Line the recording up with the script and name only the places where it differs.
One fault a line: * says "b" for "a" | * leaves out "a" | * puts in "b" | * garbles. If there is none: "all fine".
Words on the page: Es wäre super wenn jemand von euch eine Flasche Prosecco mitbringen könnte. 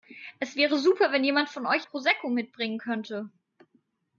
* leaves out "eine Flasche"